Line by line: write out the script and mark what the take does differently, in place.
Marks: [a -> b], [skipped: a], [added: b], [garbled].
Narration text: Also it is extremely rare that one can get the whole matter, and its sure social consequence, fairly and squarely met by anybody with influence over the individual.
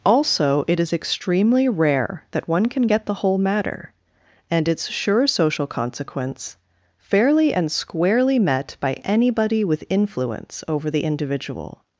Also it is extremely rare that one can get the whole matter, and its sure social consequence, fairly and squarely met by anybody with influence over the individual.